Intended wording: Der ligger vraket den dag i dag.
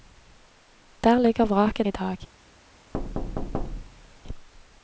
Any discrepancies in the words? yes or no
yes